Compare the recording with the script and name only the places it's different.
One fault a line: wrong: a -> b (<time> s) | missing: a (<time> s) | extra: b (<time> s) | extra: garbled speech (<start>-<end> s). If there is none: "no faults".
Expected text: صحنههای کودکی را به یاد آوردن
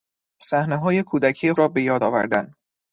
no faults